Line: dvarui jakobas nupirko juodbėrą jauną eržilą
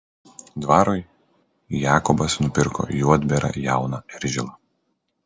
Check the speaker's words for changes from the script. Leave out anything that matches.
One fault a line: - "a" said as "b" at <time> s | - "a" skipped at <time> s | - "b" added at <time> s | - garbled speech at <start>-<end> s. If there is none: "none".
none